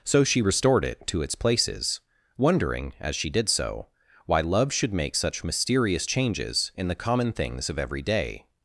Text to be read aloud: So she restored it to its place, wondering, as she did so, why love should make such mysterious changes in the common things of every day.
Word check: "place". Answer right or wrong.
wrong